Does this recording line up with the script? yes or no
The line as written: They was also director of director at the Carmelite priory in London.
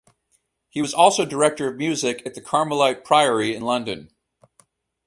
no